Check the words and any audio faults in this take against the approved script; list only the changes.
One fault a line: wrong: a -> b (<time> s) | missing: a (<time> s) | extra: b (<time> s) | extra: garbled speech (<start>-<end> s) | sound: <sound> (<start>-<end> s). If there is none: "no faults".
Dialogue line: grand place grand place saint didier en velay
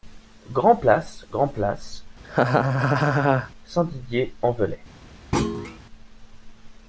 sound: laugh (2.2-3.5 s)
sound: thud (5.3-5.8 s)